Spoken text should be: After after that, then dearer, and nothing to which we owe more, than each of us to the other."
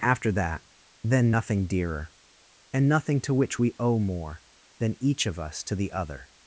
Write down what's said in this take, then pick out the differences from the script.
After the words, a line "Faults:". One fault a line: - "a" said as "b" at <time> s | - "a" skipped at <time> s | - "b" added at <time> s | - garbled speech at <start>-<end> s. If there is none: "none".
After that, then nothing dearer, and nothing to which we owe more, than each of us to the other."
Faults:
- "after" skipped at 0.3 s
- "nothing" added at 1.3 s